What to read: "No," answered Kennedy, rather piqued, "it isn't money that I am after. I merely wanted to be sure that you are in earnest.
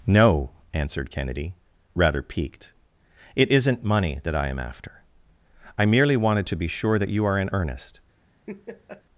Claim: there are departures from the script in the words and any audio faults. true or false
true